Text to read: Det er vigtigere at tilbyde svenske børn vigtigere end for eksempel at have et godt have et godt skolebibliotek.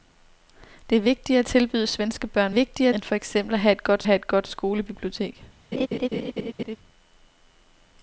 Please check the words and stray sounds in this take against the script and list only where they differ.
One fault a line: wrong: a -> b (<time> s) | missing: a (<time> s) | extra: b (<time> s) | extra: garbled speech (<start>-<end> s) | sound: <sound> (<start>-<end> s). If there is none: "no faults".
sound: laugh (5.7-6.8 s)